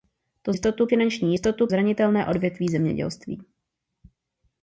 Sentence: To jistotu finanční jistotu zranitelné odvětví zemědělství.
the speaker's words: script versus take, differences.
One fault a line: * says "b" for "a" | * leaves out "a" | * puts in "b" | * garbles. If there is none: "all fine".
all fine